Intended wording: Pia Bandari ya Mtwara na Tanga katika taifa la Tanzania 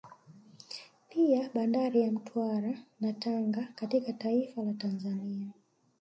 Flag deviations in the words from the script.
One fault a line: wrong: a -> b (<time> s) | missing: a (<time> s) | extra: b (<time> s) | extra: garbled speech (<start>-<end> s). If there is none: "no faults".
no faults